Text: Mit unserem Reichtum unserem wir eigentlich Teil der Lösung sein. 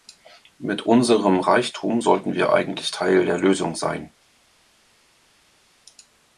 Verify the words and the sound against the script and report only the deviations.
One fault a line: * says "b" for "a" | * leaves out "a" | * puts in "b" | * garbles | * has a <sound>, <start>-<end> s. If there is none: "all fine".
* says "sollten" for "unserem"